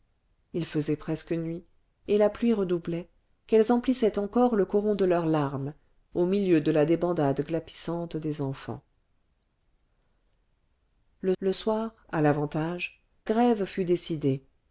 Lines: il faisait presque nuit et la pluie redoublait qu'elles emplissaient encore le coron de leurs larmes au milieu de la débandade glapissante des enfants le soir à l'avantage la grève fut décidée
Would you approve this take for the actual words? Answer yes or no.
no